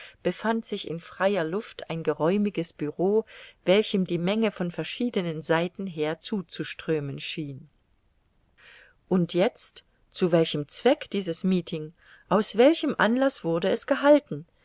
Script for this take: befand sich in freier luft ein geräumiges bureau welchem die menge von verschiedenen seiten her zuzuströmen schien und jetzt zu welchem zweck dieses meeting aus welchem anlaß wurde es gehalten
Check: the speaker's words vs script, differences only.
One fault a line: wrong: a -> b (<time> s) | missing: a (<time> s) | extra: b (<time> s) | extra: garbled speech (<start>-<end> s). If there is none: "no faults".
no faults